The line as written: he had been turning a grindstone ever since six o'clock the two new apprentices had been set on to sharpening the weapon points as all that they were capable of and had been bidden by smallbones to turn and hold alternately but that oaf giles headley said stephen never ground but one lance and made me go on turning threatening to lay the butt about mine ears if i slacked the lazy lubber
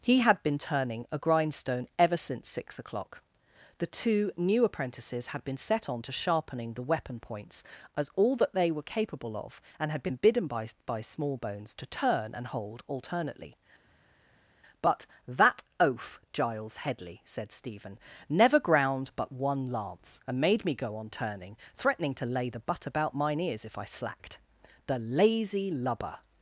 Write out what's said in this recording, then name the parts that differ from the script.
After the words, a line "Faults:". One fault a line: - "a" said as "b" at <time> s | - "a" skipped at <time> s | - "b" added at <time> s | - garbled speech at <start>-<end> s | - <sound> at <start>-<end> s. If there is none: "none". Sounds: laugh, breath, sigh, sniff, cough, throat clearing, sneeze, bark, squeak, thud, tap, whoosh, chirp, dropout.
he had been turning a grindstone ever since six o'clock the two new apprentices had been set on to sharpening the weapon points as all that they were capable of and had been bidden by by smallbones to turn and hold alternately but that oaf giles headley said stephen never ground but one lance and made me go on turning threatening to lay the butt about mine ears if i slacked the lazy lubber
Faults:
- "by" added at 10.9 s